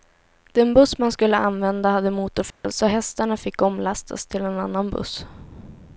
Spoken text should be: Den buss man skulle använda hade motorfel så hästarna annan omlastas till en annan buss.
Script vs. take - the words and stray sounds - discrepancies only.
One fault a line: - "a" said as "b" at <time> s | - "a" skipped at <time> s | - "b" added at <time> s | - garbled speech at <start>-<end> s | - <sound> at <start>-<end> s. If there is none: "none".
- dropout at 2.5-2.6 s
- "annan" said as "fick" at 3.4 s